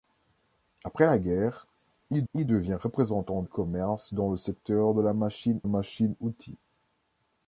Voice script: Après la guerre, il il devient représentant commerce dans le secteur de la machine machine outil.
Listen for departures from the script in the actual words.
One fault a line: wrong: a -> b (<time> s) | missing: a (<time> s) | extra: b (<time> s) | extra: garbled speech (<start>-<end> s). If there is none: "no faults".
no faults